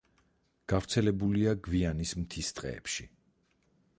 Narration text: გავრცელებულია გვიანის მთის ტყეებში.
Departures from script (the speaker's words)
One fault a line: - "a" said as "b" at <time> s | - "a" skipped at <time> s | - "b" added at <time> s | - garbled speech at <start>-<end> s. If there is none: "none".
none